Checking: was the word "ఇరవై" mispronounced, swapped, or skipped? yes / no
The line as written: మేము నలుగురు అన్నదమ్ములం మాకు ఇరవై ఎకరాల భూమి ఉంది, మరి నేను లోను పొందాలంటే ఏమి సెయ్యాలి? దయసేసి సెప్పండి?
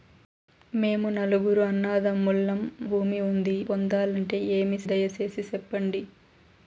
yes